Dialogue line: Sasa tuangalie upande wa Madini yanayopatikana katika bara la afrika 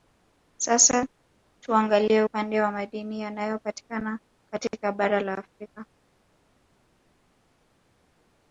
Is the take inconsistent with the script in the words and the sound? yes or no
no